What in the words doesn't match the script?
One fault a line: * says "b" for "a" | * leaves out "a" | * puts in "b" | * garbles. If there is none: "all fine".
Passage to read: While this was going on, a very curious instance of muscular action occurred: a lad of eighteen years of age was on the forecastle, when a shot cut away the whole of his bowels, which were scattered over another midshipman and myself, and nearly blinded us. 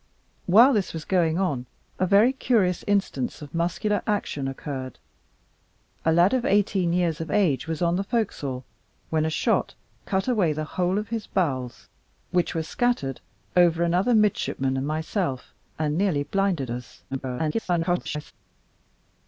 * garbles